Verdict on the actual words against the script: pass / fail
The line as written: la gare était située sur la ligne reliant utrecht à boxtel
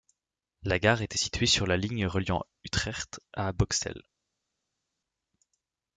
pass